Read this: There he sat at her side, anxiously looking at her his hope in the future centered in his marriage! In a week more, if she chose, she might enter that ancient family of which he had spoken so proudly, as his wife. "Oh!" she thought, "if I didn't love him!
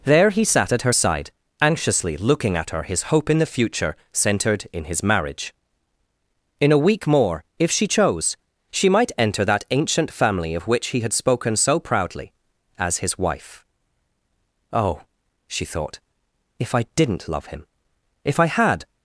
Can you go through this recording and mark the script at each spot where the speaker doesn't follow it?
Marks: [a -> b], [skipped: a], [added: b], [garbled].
There he sat at her side, anxiously looking at her his hope in the future centered in his marriage! In a week more, if she chose, she might enter that ancient family of which he had spoken so proudly, as his wife. "Oh!" she thought, "if I didn't love him! [added: if I had]